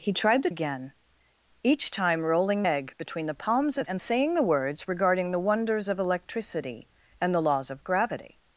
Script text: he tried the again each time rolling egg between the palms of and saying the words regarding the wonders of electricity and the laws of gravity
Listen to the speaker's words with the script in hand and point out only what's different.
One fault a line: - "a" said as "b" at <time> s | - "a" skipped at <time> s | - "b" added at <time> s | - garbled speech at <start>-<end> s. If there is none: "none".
none